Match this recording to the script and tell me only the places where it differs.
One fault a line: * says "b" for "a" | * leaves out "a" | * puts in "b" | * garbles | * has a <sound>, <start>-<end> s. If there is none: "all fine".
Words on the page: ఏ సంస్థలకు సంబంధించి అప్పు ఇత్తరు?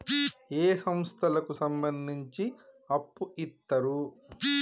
all fine